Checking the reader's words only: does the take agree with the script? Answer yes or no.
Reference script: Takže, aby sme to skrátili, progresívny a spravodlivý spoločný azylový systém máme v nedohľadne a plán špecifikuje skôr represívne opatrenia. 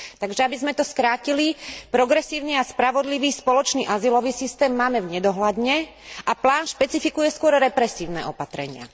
yes